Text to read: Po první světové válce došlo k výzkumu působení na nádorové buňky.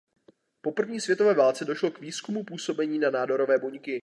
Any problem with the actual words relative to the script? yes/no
no